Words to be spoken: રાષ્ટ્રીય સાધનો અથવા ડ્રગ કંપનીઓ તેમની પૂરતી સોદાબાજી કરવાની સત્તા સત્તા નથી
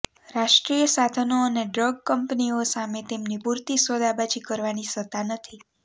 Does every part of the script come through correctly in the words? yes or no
no